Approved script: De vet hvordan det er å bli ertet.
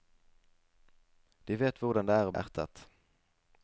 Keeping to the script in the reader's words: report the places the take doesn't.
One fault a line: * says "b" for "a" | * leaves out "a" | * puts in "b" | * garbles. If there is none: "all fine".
* leaves out "bli"